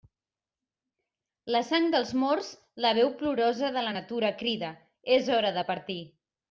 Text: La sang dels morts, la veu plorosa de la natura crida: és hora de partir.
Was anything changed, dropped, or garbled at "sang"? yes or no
no